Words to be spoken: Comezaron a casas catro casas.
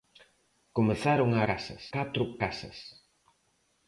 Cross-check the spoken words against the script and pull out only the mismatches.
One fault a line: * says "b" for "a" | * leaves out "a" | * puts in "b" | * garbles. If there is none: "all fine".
all fine